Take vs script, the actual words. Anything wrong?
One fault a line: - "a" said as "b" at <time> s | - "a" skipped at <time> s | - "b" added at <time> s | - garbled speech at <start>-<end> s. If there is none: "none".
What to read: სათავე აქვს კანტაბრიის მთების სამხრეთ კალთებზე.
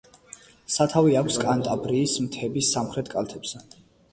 none